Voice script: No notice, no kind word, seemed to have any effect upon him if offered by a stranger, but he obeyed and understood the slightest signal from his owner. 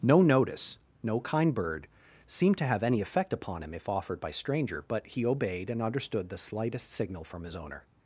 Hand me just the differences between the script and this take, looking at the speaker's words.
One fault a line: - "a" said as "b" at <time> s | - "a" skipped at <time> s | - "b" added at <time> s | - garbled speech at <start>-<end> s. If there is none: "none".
- "word" said as "bird" at 1.5 s
- "a" skipped at 4.3 s